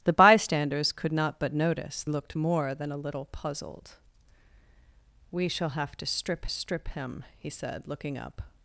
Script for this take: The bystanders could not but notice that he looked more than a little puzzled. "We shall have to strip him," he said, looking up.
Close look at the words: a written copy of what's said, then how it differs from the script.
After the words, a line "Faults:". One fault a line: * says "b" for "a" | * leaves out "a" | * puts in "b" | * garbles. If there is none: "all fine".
The bystanders could not but notice looked more than a little puzzled. "We shall have to strip strip him," he said, looking up.
Faults:
* leaves out "that he"
* puts in "strip"